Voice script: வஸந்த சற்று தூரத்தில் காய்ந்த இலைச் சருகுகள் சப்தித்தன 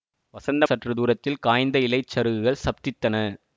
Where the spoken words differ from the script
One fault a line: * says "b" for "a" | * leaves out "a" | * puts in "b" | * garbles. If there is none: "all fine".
all fine